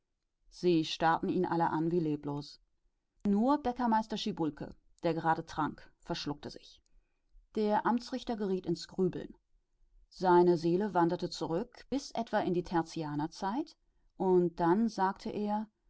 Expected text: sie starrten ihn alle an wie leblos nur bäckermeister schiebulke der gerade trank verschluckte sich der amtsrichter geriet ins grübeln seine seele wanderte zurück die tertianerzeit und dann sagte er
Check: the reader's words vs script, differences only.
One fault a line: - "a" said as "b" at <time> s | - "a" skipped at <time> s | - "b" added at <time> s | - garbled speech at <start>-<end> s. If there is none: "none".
- "bis etwa in" added at 11.9 s